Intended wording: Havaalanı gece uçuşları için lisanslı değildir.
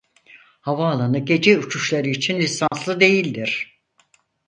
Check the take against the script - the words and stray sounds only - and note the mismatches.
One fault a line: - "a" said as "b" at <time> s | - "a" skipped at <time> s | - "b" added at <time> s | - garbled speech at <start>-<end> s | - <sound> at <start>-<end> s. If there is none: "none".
- dropout at 2.7-2.7 s